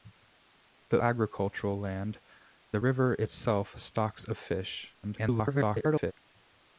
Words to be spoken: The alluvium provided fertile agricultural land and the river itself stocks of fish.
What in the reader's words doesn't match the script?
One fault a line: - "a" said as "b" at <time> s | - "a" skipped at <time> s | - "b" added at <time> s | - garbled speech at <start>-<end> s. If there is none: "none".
- "alluvium provided fertile" skipped at 1.0 s
- "and" skipped at 2.2 s
- garbled speech at 5.0-6.1 s